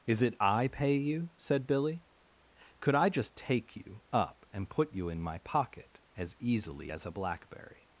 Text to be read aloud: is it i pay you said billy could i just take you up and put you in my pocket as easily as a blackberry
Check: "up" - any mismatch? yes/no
no